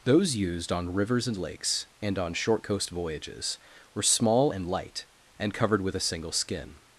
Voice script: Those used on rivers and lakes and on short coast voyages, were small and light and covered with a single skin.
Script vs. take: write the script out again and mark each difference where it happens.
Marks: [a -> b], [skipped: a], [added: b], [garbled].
Those used on rivers and lakes and on short coast voyages, were small and light and covered with a single skin.